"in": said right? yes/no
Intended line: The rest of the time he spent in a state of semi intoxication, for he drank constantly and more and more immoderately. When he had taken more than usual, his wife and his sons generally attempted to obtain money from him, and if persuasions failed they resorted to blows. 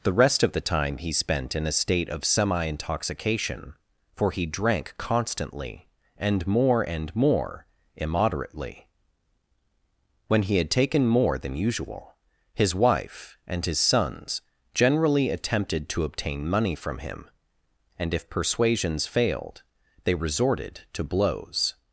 yes